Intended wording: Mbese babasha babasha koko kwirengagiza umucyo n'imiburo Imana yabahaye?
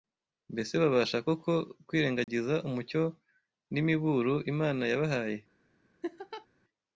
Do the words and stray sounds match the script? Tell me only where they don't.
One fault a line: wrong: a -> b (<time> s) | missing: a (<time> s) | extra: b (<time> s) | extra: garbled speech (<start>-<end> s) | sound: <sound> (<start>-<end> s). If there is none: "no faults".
missing: babasha (1.2 s)
sound: dropout (2.2-2.3 s)
sound: laugh (6.0-6.5 s)